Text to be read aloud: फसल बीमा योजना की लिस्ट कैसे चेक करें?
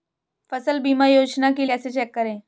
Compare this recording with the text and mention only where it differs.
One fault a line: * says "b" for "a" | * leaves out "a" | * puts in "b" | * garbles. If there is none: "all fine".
* leaves out "लिस्ट"